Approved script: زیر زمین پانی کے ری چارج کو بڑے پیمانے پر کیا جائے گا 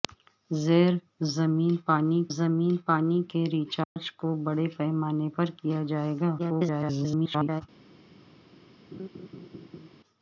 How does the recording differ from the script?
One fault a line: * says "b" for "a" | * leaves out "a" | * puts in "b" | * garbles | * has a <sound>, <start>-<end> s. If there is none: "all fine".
* puts in "زمین پانی"
* has a dropout, 3.8-4.0 s
* garbles
* has a laugh, 8.9-9.9 s